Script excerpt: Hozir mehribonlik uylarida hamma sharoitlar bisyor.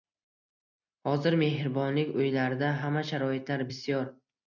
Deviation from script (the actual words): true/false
false